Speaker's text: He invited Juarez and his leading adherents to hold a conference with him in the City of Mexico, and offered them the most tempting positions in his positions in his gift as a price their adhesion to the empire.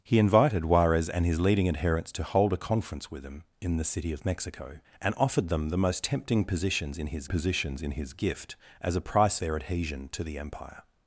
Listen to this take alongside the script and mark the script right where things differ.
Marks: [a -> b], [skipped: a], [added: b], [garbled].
He invited Juarez and his leading adherents to hold a conference with him in the City of Mexico, and offered them the most tempting positions in his positions in his gift as a price their adhesion to the empire.